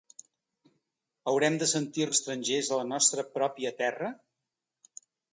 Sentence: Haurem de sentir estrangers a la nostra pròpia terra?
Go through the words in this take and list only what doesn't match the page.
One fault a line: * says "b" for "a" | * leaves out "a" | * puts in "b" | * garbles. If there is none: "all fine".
all fine